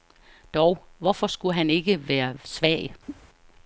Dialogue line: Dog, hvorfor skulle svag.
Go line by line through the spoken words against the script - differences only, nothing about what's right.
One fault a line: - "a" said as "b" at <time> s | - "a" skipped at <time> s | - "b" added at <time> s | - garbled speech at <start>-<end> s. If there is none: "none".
- "han ikke være" added at 1.5 s